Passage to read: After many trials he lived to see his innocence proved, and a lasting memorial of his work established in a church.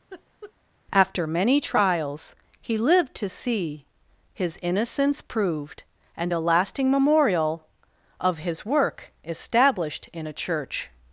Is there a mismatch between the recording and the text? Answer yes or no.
no